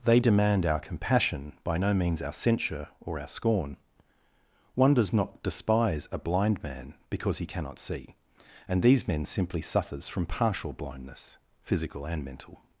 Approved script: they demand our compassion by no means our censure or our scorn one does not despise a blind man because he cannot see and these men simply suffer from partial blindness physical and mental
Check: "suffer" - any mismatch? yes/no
yes